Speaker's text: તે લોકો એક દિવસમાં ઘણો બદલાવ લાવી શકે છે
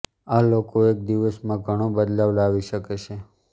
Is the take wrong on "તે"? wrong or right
wrong